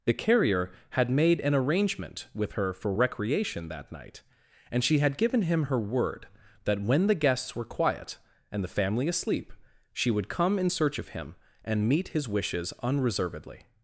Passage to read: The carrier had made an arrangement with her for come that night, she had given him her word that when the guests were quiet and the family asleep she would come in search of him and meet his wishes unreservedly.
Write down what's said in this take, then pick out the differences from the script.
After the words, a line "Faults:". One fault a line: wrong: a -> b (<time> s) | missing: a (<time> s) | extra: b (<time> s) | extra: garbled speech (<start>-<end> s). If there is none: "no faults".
The carrier had made an arrangement with her for recreation that night, and she had given him her word that when the guests were quiet and the family asleep she would come in search of him and meet his wishes unreservedly.
Faults:
wrong: come -> recreation (2.9 s)
extra: and (4.7 s)